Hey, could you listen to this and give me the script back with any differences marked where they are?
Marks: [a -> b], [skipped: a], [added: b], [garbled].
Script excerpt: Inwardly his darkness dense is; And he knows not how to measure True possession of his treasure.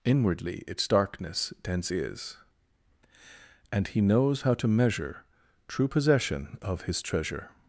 Inwardly [his -> its] darkness dense is; And he knows [skipped: not] how to measure True possession of his treasure.